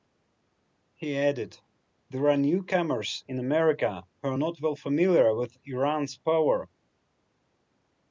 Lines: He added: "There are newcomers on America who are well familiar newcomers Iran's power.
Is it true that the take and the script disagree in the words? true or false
true